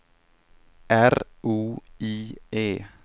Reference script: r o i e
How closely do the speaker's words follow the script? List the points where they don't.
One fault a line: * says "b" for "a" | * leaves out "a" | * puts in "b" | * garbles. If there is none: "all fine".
all fine